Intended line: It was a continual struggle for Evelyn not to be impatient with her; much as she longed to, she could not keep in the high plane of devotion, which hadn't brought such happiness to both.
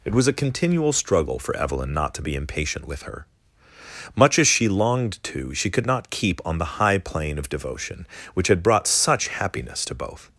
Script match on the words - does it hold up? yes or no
no